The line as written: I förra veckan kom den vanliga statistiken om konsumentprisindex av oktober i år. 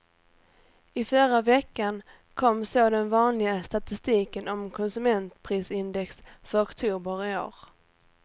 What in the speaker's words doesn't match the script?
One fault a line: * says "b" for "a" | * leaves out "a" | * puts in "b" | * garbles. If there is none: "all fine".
* puts in "så"
* says "för" for "av"